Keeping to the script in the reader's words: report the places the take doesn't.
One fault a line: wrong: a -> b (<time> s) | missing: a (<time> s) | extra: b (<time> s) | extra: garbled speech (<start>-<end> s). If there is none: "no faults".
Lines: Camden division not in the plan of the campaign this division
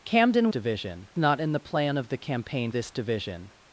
no faults